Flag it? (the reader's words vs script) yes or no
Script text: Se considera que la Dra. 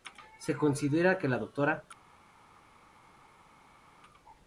no